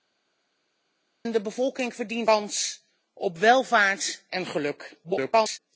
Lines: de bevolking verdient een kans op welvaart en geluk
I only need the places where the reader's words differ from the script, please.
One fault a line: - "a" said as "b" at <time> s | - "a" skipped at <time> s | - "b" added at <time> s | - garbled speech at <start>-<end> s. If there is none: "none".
- "een" skipped at 2.3 s
- garbled speech at 5.0-5.6 s